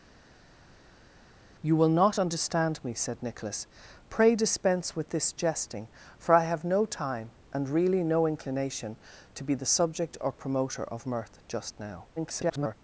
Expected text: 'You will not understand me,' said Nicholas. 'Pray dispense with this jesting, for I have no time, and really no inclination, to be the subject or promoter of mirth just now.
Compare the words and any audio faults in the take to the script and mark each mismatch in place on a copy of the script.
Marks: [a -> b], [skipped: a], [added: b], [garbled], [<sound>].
'You will not understand me,' said Nicholas. 'Pray dispense with this jesting, for I have no time, and really no inclination, to be the subject or promoter of mirth just now. [garbled]